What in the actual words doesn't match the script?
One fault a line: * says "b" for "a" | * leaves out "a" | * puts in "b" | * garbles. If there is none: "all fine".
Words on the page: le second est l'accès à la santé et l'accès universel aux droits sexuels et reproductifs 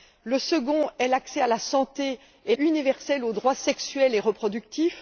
* leaves out "l'accès"